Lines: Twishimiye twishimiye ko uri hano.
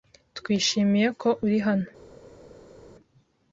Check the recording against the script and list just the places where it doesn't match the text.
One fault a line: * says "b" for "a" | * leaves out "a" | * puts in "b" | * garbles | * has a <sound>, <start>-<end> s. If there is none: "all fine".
* leaves out "twishimiye"